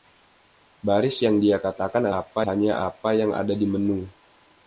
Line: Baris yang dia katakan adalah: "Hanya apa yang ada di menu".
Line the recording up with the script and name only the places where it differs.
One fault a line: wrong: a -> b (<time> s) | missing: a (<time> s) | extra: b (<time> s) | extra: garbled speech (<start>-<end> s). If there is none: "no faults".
wrong: adalah -> apa (2.1 s)